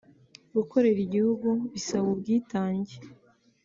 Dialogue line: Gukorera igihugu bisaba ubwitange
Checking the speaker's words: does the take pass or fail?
pass